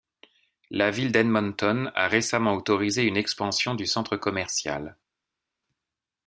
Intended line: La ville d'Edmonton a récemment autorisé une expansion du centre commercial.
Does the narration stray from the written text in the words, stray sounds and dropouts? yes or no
no